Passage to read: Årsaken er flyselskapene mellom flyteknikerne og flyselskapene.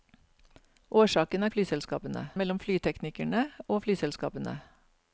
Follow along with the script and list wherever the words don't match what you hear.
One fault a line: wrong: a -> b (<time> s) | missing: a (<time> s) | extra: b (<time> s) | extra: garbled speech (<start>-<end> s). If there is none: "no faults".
no faults